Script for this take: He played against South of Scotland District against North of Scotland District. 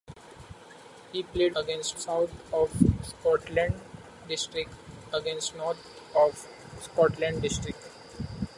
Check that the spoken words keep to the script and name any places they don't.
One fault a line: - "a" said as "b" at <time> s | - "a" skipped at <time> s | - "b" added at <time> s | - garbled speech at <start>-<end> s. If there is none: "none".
none